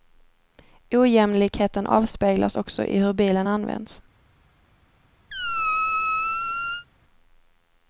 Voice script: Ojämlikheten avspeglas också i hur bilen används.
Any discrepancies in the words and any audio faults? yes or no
yes